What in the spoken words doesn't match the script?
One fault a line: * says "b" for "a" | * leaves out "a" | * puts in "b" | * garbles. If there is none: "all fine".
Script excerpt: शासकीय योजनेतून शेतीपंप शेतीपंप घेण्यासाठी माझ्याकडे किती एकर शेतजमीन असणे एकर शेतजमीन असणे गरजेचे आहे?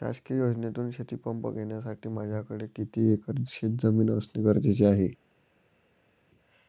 * leaves out "शेतीपंप"
* leaves out "एकर शेतजमीन असणे"